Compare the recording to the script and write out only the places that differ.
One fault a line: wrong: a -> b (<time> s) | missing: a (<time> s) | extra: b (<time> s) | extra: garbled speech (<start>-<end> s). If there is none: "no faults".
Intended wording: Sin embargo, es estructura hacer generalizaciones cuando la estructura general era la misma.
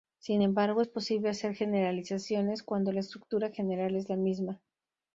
wrong: estructura -> posible (0.9 s)
wrong: era -> es (3.9 s)